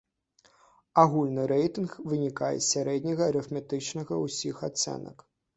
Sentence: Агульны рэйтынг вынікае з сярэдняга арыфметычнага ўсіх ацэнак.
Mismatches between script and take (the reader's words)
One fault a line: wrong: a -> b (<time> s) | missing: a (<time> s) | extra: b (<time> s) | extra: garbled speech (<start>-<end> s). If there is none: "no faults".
no faults